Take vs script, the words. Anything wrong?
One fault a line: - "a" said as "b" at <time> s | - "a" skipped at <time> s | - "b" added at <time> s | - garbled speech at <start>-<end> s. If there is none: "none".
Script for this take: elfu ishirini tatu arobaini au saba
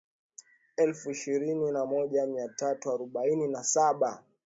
- "na moja mia" added at 1.7 s
- "au" said as "na" at 3.5 s